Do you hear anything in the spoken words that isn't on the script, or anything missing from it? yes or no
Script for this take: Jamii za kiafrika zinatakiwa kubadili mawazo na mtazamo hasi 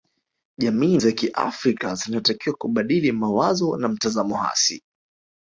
no